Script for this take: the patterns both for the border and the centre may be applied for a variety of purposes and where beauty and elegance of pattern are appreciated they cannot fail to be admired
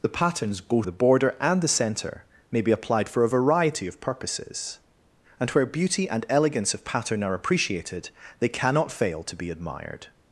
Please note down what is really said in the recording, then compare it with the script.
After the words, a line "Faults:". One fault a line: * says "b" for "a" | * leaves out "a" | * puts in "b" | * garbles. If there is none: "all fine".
the patterns both the border and the centre may be applied for a variety of purposes and where beauty and elegance of pattern are appreciated they cannot fail to be admired
Faults:
* leaves out "for"